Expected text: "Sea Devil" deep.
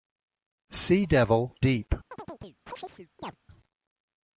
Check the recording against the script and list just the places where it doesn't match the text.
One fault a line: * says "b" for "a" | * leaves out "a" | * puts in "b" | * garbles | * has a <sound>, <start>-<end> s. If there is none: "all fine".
* has a chirp, 2.1-3.4 s